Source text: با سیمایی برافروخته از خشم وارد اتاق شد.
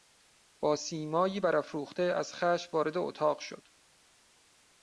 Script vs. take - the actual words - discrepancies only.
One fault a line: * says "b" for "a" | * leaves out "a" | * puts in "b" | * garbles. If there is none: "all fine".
all fine